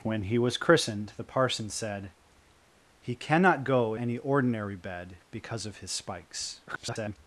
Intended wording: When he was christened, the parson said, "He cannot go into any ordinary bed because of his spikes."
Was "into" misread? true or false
true